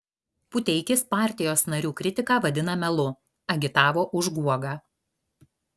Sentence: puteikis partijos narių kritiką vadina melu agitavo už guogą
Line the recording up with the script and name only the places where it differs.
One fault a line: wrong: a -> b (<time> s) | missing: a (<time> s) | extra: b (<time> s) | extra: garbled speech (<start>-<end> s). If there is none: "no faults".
no faults